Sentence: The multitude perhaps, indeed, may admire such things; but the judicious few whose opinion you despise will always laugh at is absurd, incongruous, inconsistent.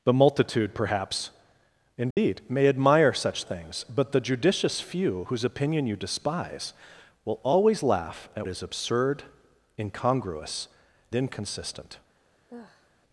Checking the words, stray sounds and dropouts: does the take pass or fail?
fail